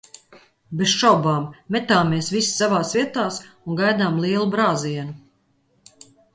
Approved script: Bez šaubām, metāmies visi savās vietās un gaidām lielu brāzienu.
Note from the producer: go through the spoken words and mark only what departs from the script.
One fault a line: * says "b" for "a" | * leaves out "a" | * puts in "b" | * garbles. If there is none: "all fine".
all fine